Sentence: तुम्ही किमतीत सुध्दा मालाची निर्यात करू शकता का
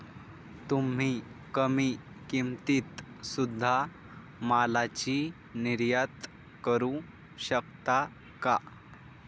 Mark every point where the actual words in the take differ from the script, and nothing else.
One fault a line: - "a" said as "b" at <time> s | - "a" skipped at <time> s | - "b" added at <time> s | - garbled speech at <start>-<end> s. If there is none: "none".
- "कमी" added at 1.5 s